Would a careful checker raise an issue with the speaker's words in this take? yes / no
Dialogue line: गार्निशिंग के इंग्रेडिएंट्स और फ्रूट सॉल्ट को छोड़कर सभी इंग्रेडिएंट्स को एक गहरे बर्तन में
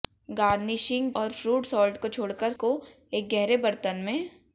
yes